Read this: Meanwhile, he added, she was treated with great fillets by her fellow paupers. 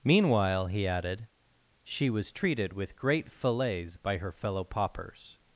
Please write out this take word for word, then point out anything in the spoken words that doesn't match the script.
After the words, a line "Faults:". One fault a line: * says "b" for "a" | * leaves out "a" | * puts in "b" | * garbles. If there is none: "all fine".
Meanwhile, he added, she was treated with great fillets by her fellow paupers.
Faults:
all fine